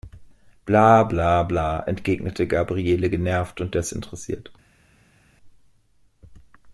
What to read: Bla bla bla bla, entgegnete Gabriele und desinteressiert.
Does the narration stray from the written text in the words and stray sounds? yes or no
yes